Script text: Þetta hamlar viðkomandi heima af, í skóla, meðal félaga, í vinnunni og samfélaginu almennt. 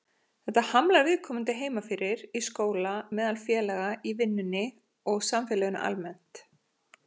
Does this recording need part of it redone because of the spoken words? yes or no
yes